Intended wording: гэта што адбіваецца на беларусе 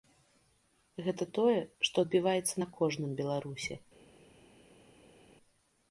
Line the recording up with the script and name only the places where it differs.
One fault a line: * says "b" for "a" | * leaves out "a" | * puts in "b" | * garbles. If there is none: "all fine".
* puts in "тое"
* puts in "кожным"